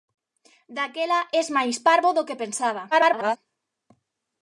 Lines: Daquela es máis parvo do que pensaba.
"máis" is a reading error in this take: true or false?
false